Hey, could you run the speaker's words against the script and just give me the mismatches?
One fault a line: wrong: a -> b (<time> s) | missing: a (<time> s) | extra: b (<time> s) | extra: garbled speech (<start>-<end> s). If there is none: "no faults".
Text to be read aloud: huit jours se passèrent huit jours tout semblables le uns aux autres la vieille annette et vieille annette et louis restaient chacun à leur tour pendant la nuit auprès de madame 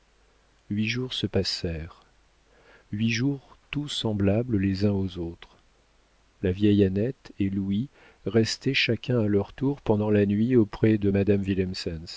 wrong: le -> les (4.6 s)
missing: vieille annette et (7.5 s)